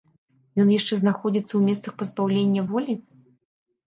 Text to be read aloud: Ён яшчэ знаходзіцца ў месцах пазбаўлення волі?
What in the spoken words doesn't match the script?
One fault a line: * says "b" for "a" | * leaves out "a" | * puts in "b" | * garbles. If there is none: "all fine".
all fine